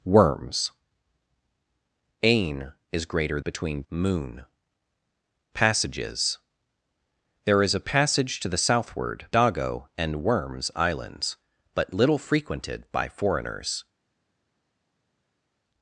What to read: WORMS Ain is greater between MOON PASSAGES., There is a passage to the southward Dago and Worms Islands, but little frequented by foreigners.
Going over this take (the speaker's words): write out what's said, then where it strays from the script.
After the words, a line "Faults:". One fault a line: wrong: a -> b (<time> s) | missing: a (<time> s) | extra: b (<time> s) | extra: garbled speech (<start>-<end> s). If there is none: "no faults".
WORMS Ain is greater between MOON PASSAGES., There is a passage to the southward Dago and Worms Islands, but little frequented by foreigners.
Faults:
no faults